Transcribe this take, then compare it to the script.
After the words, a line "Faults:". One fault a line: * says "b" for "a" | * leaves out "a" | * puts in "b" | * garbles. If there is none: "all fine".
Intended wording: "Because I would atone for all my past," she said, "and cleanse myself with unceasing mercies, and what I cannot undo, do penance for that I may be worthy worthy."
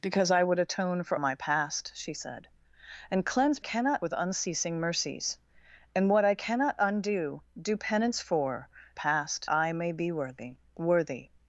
"Because I would atone for my past," she said, "and cleanse cannot with unceasing mercies, and what I cannot undo, do penance for past I may be worthy worthy."
Faults:
* leaves out "all"
* says "cannot" for "myself"
* says "past" for "that"